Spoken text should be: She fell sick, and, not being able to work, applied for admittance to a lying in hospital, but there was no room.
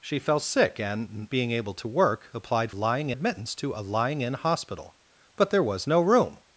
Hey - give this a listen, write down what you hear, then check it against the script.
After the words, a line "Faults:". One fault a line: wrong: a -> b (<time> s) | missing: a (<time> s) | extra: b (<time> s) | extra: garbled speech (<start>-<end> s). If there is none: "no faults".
She fell sick, and, being able to work, applied lying admittance to a lying in hospital, but there was no room.
Faults:
missing: not (1.3 s)
wrong: for -> lying (2.7 s)